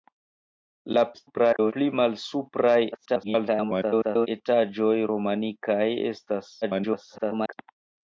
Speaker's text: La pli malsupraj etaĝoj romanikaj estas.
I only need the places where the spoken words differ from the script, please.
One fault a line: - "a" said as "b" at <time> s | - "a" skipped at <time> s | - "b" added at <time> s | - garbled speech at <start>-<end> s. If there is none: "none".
- garbled speech at 1.1-1.7 s
- garbled speech at 2.9-4.3 s
- garbled speech at 6.6-7.5 s